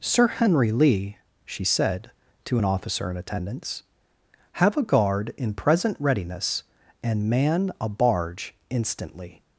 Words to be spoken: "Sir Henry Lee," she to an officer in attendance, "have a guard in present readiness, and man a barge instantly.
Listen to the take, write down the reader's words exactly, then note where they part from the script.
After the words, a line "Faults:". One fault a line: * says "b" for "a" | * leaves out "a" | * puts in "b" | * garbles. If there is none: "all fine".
"Sir Henry Lee," she said, to an officer in attendance, "have a guard in present readiness, and man a barge instantly.
Faults:
* puts in "said"